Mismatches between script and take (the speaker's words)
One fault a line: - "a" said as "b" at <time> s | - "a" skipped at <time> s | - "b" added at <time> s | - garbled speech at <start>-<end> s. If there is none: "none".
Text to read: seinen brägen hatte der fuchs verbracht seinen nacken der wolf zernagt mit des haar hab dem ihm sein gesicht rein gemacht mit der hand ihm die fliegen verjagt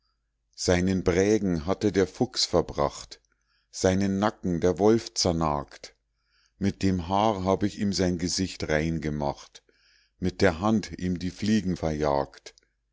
- "des" said as "dem" at 6.8 s
- "dem" said as "ich" at 7.6 s